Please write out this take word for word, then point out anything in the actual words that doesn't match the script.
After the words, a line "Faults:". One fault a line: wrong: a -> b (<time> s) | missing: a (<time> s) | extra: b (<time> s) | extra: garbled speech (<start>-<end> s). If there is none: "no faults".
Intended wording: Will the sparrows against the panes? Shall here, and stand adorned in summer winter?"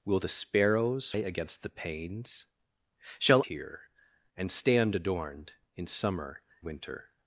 Will the sparrows against the panes? Shall here, and stand adorned in summer winter?"
Faults:
no faults